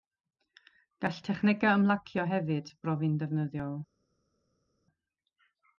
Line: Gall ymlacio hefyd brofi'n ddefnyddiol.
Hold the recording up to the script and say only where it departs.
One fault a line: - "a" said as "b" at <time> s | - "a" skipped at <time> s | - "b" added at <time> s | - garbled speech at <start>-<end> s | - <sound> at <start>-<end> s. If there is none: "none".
- "technegau" added at 1.3 s